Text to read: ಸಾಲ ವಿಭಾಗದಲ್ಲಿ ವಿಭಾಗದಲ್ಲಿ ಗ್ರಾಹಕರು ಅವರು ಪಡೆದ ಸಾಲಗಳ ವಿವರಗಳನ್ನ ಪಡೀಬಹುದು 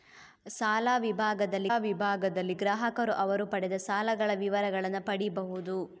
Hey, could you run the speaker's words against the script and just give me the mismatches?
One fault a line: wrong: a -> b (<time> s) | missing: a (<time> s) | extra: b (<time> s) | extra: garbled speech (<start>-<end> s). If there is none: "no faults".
no faults